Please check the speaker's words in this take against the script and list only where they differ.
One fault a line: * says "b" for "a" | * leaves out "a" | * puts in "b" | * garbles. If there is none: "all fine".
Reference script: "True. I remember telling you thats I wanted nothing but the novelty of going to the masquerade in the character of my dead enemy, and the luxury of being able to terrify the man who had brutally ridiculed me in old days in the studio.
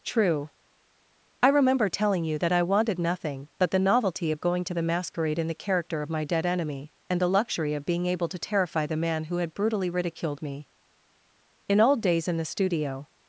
* says "that" for "thats"